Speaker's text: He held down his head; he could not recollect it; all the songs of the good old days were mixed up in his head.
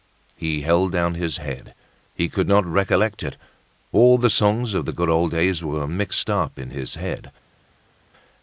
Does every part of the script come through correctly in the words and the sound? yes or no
yes